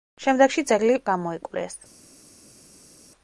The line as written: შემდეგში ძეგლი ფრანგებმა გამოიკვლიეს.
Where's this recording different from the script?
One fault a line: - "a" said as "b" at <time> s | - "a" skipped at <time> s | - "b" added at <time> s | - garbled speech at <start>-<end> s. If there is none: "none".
- "ფრანგებმა" skipped at 1.0 s